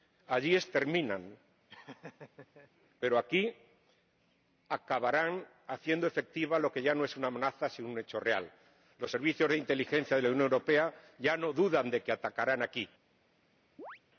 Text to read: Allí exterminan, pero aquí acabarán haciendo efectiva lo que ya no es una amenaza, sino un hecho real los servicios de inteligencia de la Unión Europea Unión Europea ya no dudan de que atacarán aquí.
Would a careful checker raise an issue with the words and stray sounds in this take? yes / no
yes